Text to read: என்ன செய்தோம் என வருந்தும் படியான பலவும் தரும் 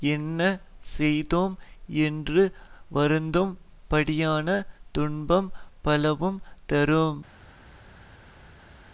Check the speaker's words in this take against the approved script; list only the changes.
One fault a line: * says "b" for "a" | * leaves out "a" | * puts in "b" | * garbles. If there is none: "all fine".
* says "என்று" for "என"
* puts in "துன்பம்"